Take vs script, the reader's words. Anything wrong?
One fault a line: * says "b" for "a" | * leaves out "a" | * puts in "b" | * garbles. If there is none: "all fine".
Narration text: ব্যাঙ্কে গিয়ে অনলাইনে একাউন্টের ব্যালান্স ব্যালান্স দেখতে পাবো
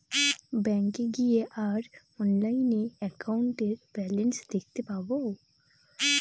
* puts in "আর"
* leaves out "ব্যালান্স"